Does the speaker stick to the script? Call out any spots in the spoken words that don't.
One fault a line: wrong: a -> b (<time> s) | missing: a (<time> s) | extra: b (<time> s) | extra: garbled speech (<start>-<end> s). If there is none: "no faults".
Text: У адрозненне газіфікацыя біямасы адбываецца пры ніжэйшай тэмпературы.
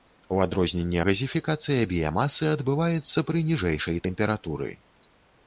no faults